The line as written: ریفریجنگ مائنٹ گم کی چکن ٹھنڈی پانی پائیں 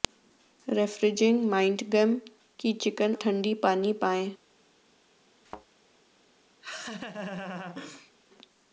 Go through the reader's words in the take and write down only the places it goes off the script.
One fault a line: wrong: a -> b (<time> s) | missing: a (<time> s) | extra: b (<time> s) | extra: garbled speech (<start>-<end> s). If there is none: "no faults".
no faults